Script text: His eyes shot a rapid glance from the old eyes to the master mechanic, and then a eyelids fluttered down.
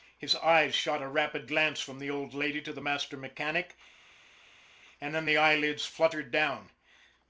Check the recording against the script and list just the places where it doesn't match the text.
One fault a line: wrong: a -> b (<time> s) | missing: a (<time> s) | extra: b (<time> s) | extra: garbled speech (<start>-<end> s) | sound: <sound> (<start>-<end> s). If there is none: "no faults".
wrong: eyes -> lady (2.3 s)
wrong: a -> the (5.2 s)